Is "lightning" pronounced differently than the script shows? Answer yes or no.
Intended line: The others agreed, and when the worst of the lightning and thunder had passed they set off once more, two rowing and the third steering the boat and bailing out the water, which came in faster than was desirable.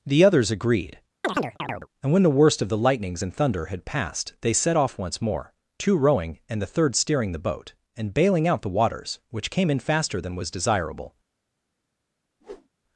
yes